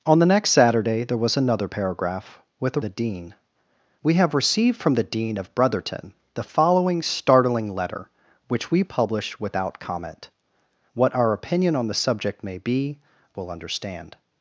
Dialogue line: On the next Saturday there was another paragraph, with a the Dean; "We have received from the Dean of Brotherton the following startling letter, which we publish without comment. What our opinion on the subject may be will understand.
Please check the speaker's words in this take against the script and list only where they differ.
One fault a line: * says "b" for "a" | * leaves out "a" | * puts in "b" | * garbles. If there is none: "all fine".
all fine